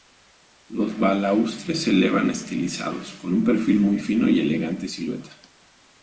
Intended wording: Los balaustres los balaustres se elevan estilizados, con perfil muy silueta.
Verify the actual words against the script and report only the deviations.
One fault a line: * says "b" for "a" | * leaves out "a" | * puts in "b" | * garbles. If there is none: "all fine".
* leaves out "los balaustres"
* puts in "un"
* puts in "fino y elegante"